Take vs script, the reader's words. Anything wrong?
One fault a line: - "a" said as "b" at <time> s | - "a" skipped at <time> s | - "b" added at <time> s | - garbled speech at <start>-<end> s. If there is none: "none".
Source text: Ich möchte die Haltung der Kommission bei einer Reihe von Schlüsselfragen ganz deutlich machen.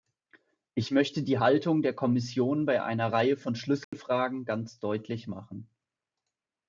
none